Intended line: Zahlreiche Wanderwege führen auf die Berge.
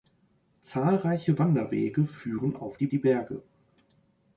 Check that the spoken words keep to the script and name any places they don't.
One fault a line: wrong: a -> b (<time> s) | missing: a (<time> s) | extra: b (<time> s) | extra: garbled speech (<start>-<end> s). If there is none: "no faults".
extra: die (2.9 s)